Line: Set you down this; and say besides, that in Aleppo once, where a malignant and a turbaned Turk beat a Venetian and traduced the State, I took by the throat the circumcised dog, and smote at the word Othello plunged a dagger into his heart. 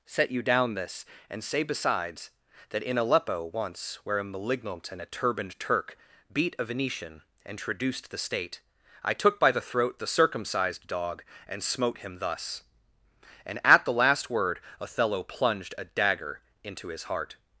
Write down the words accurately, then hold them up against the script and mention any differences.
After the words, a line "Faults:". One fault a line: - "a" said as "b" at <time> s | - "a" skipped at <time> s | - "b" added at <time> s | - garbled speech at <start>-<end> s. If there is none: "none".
Set you down this; and say besides, that in Aleppo once, where a malignant and a turbaned Turk beat a Venetian and traduced the State, I took by the throat the circumcised dog, and smote him thus." And at the last word Othello plunged a dagger into his heart.
Faults:
- "him thus And" added at 12.0 s
- "last" added at 13.9 s